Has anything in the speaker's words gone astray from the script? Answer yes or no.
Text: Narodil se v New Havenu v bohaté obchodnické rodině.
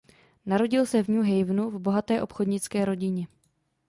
no